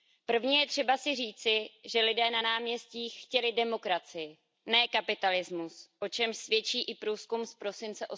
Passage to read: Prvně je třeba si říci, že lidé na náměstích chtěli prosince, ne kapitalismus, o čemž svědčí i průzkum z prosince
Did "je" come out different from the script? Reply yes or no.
no